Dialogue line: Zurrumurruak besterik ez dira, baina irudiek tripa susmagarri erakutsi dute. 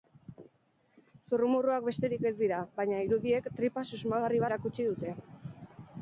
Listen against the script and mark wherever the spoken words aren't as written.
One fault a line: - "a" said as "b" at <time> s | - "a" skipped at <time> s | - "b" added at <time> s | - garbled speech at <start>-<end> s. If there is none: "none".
none